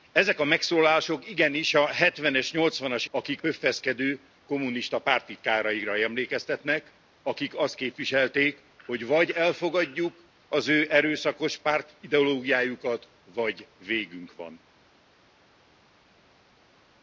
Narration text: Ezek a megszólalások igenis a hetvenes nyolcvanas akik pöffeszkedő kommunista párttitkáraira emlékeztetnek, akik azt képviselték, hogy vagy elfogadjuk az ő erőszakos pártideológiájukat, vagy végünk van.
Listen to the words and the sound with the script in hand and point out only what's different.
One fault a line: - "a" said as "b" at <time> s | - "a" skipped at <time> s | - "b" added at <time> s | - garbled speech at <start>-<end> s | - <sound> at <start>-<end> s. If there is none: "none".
none